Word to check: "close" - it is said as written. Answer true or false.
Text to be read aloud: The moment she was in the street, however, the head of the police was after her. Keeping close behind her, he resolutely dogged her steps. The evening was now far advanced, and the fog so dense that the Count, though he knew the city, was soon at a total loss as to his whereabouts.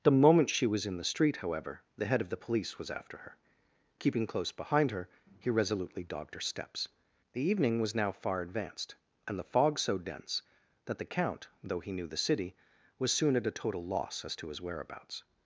true